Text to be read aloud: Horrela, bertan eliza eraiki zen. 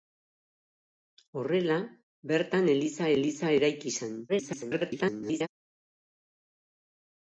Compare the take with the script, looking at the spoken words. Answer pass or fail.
fail